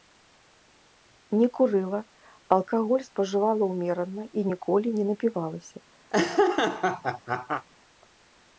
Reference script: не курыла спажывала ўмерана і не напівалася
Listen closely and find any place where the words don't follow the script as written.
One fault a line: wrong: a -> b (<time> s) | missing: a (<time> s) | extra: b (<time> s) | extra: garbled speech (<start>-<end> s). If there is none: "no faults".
extra: алкаголь (2.6 s)
extra: ніколі (4.5 s)